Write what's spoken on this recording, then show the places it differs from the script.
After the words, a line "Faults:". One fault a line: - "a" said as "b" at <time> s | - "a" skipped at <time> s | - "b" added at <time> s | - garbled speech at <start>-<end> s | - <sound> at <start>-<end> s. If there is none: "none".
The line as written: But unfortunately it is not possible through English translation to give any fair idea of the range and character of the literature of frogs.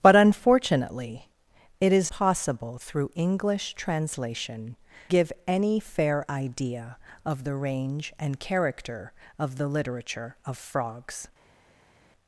But unfortunately it is possible through English translation give any fair idea of the range and character of the literature of frogs.
Faults:
- "not" skipped at 2.1 s
- "to" skipped at 4.8 s